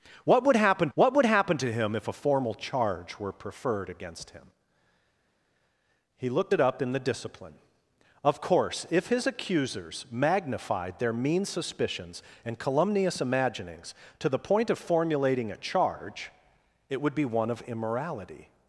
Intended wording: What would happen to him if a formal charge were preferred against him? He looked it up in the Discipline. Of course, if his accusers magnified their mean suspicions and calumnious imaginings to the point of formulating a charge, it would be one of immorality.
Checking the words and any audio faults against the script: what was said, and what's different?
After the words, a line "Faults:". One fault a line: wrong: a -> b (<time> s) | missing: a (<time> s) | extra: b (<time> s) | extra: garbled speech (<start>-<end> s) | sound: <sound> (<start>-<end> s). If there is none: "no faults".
What would happen what would happen to him if a formal charge were preferred against him? He looked it up in the Discipline. Of course, if his accusers magnified their mean suspicions and calumnious imaginings to the point of formulating a charge, it would be one of immorality.
Faults:
extra: what would happen (0.9 s)